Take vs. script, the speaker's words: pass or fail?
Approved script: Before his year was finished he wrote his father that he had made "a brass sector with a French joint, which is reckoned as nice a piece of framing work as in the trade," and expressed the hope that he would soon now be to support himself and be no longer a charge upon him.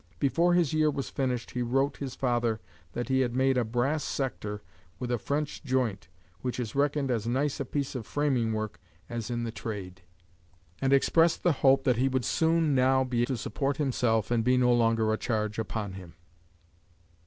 pass